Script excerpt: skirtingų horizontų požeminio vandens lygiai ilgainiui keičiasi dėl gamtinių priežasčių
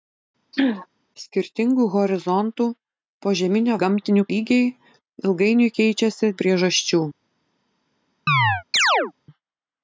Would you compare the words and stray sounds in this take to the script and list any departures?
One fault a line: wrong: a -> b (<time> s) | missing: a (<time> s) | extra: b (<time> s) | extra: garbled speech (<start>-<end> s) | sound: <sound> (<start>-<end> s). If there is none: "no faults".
sound: throat clearing (0.5-0.9 s)
wrong: vandens -> gamtinių (3.9 s)
missing: dėl gamtinių (6.3 s)
sound: chirp (8.3-9.1 s)